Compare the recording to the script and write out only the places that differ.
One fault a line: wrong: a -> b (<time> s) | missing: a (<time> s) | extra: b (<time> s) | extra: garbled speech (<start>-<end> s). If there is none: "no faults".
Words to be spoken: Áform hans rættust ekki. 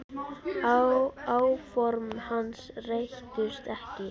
no faults